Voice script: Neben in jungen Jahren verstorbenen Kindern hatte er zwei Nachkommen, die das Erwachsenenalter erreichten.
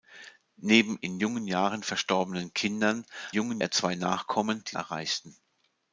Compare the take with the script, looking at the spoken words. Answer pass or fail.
fail